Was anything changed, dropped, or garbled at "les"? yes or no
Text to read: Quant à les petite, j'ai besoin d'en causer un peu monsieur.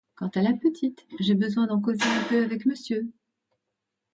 yes